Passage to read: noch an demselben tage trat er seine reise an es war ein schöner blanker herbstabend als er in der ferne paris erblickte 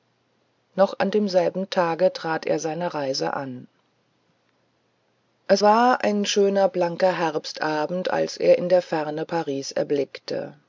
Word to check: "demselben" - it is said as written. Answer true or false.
true